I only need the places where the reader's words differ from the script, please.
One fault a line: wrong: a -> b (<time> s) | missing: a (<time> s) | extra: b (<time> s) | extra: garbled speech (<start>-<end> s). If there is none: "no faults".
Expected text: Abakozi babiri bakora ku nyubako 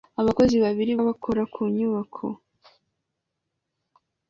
no faults